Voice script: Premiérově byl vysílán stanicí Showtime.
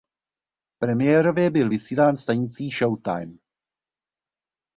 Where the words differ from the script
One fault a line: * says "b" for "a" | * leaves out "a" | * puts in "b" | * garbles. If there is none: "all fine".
all fine